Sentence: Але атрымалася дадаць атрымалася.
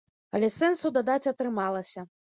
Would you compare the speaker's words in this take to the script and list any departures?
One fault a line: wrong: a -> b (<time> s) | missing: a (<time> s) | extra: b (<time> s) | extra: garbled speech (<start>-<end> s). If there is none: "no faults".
wrong: атрымалася -> сэнсу (0.6 s)